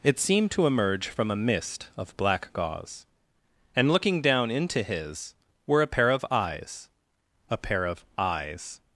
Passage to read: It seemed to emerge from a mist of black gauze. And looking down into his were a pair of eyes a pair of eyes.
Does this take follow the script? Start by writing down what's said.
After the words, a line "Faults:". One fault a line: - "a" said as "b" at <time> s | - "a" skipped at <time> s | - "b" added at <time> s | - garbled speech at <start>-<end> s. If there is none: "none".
It seemed to emerge from a mist of black gauze. And looking down into his were a pair of eyes a pair of eyes.
Faults:
none